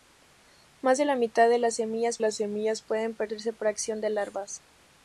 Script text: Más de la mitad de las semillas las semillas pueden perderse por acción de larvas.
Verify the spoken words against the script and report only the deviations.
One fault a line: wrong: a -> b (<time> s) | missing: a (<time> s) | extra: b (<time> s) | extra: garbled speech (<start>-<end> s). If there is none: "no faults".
no faults